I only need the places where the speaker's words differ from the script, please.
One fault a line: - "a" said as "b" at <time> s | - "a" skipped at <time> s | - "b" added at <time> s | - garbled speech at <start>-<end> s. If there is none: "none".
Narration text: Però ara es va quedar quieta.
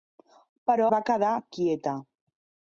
- "ara es" skipped at 0.9 s